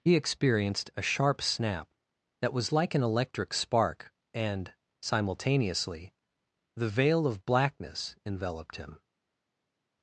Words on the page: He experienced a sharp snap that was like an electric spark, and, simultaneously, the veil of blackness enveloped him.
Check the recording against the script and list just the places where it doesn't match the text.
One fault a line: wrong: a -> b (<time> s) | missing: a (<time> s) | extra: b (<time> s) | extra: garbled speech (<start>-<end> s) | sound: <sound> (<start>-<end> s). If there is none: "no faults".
no faults